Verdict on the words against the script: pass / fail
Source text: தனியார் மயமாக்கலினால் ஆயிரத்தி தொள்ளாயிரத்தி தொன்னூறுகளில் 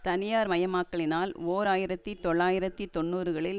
fail